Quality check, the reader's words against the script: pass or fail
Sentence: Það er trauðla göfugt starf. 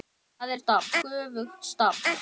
fail